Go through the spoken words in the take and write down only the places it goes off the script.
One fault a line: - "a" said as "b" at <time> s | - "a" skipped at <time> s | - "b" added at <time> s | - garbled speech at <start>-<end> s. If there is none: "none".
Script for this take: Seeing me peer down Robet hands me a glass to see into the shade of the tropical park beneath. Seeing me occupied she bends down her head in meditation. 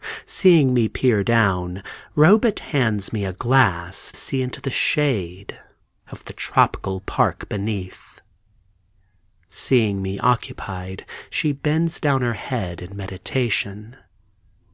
- "to" skipped at 4.1 s